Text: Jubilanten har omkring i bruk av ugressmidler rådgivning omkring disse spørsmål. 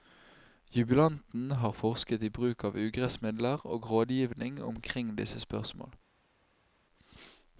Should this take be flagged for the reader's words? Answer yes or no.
yes